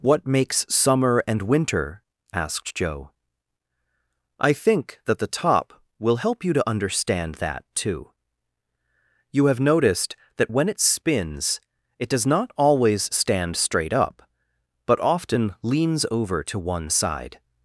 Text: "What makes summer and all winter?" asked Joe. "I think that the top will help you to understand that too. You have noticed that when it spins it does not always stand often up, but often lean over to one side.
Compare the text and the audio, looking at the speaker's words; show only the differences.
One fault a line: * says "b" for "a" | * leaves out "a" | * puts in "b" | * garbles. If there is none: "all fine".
* leaves out "all"
* says "straight" for "often"
* says "leans" for "lean"